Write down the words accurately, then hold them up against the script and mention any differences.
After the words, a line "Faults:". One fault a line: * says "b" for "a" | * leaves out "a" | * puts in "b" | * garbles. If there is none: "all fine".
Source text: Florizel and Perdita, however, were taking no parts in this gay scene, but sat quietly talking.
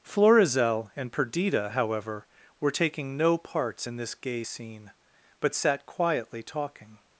Florizel and Perdita, however, were taking no parts in this gay scene, but sat quietly talking.
Faults:
all fine